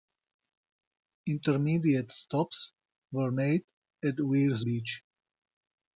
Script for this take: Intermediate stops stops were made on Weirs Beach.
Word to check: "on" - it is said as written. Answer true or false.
false